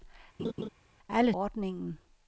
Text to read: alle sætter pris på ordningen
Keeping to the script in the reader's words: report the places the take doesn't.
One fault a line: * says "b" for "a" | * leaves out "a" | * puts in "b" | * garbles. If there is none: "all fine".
* leaves out "sætter pris på"